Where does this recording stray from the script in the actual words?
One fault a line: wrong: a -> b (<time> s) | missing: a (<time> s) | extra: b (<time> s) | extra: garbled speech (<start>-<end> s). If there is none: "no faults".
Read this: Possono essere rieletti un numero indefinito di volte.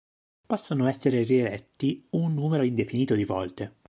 no faults